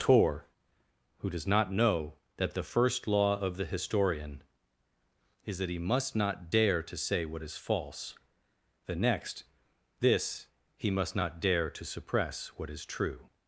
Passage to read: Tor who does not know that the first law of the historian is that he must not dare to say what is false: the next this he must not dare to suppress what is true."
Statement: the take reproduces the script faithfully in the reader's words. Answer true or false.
true